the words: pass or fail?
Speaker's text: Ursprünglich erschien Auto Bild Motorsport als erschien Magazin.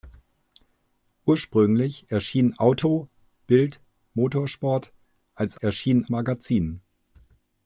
pass